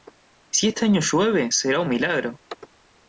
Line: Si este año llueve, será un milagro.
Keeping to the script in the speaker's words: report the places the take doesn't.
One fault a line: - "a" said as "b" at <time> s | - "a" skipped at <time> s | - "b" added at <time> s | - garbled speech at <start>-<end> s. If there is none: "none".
none